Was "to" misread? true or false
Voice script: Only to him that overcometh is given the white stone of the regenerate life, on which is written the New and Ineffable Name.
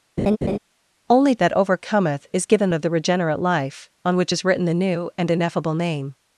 true